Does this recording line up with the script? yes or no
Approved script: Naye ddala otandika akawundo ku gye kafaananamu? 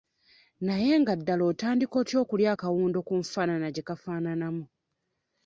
no